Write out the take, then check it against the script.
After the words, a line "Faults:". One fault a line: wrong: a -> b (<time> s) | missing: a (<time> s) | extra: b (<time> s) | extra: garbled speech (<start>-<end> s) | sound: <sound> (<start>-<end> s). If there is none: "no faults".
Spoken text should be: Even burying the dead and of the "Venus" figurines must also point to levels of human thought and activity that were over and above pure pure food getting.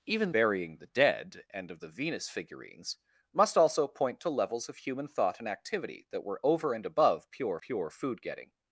Even burying the dead and of the "Venus" figurines must also point to levels of human thought and activity that were over and above pure pure food getting.
Faults:
no faults